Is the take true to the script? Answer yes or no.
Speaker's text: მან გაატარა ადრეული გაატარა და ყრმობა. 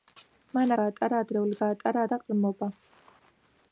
yes